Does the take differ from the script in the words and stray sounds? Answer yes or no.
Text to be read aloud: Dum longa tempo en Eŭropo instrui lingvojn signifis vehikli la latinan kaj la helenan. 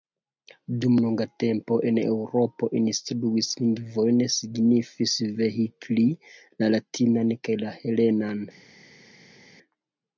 no